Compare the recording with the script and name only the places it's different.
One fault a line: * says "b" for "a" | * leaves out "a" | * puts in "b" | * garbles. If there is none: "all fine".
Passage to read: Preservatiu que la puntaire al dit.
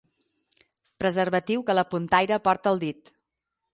* puts in "porta"